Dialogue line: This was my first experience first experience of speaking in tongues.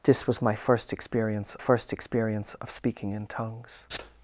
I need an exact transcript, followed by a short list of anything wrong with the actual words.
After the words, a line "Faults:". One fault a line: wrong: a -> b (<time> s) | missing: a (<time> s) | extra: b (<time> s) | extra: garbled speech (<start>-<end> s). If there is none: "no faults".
This was my first experience first experience of speaking in tongues.
Faults:
no faults